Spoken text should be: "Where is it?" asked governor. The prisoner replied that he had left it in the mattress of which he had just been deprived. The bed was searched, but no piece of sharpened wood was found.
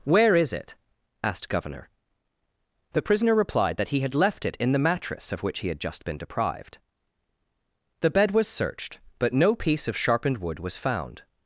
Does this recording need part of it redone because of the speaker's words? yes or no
no